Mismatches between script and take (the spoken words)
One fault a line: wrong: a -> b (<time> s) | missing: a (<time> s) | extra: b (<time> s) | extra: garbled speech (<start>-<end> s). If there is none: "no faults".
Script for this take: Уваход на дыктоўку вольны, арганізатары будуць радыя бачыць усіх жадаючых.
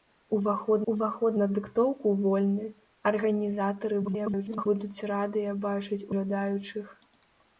extra: уваход (0.9 s)
extra: garbled speech (4.0-4.7 s)
missing: усіх (6.0 s)